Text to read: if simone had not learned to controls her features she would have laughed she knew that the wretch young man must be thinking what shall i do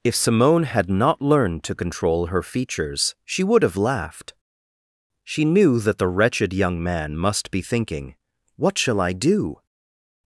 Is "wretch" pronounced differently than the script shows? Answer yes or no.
yes